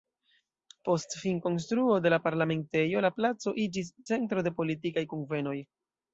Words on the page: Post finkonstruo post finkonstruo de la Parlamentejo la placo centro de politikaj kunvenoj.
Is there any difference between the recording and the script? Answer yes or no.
yes